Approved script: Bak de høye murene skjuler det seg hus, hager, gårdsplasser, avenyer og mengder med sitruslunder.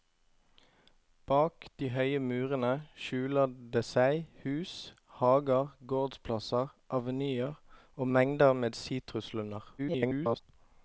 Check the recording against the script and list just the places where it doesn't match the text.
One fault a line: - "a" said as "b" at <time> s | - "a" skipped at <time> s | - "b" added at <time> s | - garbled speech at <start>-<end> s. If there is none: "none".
- garbled speech at 9.8-10.4 s